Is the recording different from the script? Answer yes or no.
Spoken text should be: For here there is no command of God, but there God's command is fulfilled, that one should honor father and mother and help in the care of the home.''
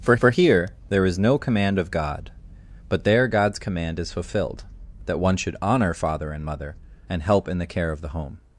yes